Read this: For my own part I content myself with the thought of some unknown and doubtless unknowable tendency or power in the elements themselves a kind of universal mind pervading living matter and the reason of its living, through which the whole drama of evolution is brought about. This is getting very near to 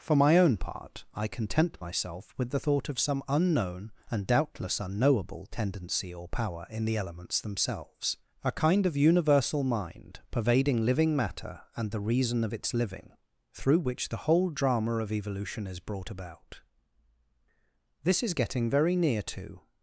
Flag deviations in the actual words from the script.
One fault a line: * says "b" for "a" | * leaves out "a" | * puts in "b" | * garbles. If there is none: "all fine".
all fine